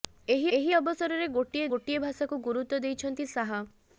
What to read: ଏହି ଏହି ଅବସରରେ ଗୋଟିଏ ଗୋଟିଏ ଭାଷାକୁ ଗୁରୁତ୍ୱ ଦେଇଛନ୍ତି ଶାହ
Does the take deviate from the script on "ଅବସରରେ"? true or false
false